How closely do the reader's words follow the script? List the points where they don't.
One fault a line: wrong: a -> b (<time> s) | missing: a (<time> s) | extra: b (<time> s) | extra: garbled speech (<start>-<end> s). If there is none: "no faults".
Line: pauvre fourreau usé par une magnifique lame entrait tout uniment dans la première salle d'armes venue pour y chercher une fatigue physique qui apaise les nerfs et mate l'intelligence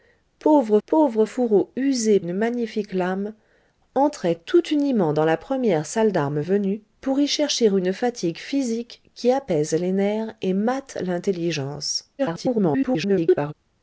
extra: pauvre (0.9 s)
missing: par (2.2 s)
extra: garbled speech (12.2-13.5 s)